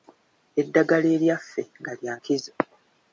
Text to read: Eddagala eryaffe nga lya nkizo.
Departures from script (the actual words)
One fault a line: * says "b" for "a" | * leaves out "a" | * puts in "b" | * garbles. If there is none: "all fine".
all fine